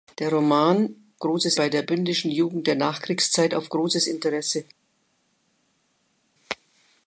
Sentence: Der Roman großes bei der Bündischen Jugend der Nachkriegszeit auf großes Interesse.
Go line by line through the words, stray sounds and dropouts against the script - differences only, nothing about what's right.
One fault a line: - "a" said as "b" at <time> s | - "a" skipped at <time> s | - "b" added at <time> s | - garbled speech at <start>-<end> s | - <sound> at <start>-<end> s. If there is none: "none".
none